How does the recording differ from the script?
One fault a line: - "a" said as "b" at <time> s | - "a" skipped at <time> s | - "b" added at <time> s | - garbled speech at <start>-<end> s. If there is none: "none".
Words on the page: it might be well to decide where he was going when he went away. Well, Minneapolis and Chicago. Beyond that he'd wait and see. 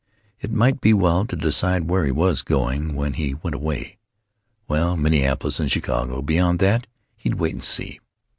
none